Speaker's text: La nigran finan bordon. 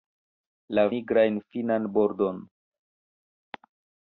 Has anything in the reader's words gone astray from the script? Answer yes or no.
no